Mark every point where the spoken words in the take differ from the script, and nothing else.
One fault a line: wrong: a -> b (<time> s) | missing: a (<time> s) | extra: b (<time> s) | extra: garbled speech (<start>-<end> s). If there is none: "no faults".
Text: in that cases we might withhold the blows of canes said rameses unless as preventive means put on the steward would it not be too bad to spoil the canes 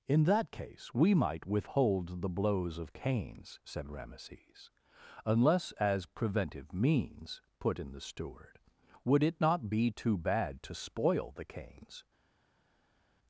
wrong: cases -> case (0.5 s)
wrong: on -> in (7.8 s)